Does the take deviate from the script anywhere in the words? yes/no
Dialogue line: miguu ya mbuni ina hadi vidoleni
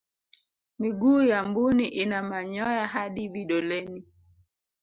yes